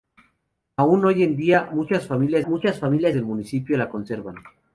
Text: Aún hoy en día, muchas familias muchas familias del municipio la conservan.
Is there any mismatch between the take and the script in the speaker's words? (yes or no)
no